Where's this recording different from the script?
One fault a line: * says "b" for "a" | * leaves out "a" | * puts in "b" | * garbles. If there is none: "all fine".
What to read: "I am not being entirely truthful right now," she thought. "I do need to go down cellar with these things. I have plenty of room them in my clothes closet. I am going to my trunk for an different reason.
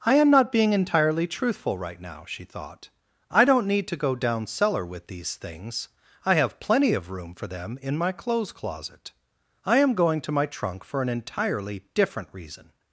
* says "don't" for "do"
* puts in "for"
* puts in "entirely"